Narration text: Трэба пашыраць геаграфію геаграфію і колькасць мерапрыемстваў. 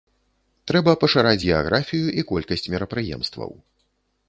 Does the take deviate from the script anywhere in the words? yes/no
yes